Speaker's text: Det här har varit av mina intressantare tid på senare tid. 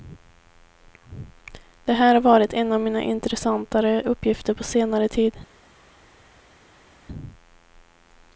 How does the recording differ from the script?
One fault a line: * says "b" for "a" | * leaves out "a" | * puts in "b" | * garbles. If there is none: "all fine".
* puts in "en"
* says "uppgifter" for "tid"